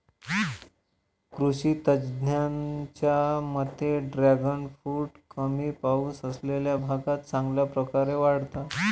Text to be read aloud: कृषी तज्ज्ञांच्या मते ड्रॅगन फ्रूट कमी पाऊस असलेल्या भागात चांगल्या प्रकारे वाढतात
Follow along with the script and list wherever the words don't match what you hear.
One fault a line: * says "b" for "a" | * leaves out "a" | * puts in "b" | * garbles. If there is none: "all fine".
all fine